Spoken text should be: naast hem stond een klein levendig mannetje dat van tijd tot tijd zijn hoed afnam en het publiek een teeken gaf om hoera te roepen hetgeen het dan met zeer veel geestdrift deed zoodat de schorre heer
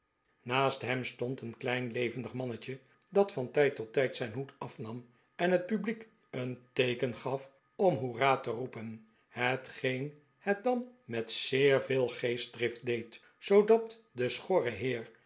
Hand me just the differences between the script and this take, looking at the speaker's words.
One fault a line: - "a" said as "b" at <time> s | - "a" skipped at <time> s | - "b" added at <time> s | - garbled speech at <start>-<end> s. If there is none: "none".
none